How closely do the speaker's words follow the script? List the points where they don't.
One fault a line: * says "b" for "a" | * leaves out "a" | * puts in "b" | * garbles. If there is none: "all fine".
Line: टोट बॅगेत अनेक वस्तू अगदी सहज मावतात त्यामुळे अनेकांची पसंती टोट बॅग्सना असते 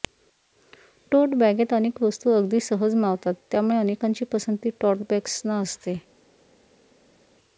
all fine